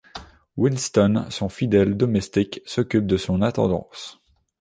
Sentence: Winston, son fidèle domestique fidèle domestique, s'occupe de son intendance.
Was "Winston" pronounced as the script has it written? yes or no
yes